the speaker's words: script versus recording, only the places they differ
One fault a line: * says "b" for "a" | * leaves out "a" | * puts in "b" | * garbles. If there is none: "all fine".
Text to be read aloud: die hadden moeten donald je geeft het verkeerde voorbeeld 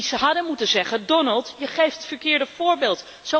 * puts in "zeggen"